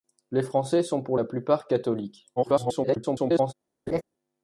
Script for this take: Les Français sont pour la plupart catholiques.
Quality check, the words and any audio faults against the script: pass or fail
fail